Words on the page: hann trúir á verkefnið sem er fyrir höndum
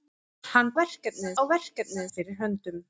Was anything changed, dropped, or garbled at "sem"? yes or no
yes